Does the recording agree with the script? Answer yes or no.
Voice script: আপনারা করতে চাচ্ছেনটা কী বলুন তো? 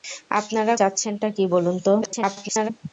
no